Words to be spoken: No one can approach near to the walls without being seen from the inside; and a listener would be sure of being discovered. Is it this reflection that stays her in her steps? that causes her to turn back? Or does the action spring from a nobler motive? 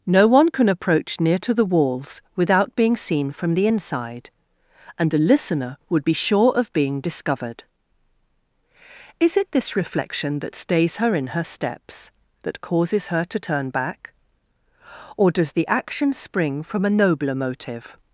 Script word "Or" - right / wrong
right